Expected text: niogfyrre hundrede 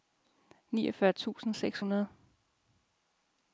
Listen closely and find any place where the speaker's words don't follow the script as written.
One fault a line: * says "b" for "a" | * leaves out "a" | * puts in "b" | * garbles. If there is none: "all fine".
* puts in "tusind seks"